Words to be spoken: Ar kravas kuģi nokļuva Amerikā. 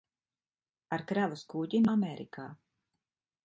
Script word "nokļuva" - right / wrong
wrong